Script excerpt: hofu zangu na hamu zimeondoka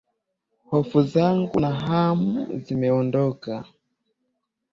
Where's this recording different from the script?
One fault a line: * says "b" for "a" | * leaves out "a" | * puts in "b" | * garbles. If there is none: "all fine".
all fine